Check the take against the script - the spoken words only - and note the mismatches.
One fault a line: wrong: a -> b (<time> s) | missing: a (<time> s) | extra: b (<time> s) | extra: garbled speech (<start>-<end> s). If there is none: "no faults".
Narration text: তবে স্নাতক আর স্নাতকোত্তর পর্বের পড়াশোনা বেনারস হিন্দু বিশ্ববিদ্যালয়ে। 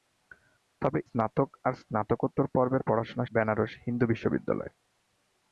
no faults